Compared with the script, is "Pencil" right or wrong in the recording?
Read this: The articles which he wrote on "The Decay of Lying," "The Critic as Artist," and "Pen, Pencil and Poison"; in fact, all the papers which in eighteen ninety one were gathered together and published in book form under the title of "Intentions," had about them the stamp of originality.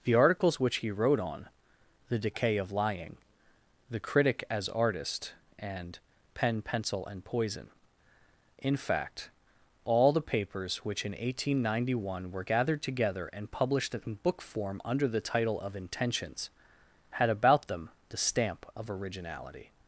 right